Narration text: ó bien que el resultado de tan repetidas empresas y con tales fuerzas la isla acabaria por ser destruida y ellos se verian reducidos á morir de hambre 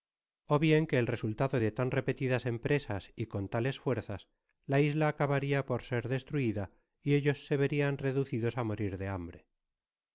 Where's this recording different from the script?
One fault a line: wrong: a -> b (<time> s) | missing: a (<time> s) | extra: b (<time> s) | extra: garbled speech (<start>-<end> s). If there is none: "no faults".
no faults